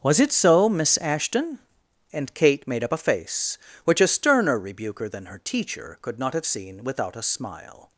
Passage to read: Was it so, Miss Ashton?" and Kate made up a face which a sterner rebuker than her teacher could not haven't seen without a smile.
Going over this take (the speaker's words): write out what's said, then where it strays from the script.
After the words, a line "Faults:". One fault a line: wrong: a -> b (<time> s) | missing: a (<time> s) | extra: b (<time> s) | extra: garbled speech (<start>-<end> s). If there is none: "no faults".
Was it so, Miss Ashton?" and Kate made up a face which a sterner rebuker than her teacher could not have seen without a smile.
Faults:
wrong: haven't -> have (6.3 s)